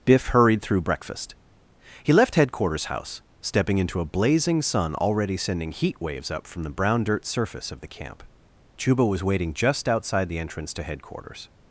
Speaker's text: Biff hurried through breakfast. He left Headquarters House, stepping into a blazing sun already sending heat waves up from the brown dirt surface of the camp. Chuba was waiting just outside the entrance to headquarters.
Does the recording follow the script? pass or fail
pass